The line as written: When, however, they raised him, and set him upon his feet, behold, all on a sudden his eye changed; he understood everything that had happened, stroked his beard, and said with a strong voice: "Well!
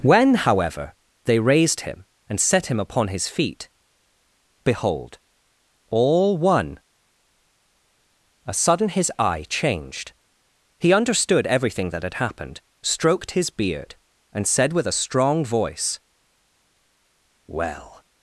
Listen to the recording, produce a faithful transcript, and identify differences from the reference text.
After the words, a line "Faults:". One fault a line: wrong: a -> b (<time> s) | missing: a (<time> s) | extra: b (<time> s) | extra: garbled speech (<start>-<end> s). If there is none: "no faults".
When, however, they raised him, and set him upon his feet, behold, all one a sudden his eye changed; he understood everything that had happened, stroked his beard, and said with a strong voice: "Well!
Faults:
wrong: on -> one (6.4 s)